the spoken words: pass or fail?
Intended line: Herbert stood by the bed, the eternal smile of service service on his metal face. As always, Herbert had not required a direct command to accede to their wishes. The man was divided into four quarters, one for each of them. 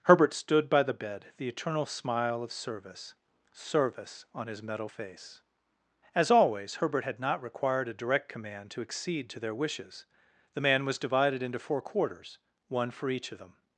pass